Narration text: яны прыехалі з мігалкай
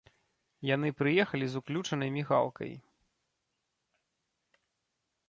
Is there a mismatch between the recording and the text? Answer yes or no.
yes